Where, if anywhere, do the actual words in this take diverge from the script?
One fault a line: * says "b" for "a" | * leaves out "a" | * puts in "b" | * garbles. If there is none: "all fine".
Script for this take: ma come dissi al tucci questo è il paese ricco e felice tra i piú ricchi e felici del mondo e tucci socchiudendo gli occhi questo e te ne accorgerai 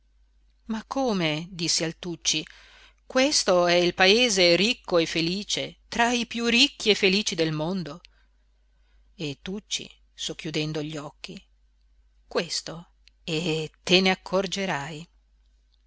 all fine